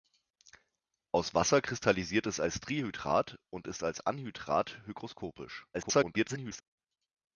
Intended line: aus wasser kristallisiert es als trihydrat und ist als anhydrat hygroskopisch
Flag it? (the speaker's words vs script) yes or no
yes